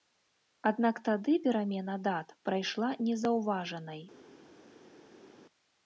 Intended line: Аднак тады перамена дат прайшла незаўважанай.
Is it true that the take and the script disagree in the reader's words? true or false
false